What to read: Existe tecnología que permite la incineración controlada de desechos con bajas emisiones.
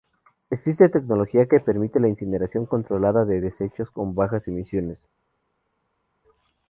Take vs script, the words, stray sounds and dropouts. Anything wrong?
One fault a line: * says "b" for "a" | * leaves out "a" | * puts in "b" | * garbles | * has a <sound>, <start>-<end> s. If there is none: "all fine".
all fine